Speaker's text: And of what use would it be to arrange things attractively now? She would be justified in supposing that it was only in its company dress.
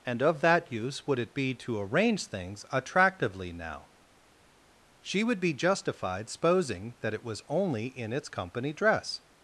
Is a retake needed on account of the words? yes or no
yes